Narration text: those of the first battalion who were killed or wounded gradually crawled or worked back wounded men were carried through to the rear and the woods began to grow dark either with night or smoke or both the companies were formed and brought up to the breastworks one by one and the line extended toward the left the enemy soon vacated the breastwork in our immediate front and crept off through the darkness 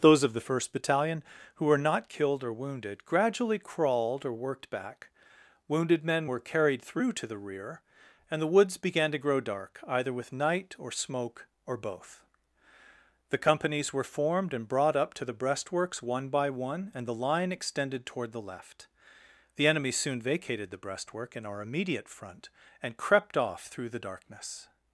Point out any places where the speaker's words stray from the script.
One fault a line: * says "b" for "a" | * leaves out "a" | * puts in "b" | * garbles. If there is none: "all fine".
* puts in "not"